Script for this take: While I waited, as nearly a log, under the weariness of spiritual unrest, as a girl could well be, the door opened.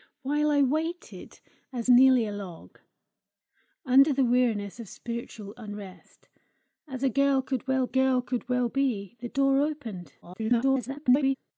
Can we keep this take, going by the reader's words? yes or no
no